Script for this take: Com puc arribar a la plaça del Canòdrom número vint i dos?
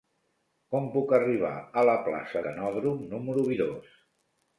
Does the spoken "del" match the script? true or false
false